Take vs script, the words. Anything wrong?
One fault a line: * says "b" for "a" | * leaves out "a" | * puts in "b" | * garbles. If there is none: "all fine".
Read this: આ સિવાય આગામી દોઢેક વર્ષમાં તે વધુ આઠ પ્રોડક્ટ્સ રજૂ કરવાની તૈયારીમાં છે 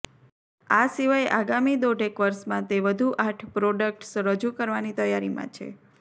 all fine